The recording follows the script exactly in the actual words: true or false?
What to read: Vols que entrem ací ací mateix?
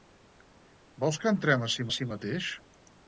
true